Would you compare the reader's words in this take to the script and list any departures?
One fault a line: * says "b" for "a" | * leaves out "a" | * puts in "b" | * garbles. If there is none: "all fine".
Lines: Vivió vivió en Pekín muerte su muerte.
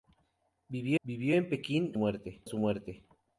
all fine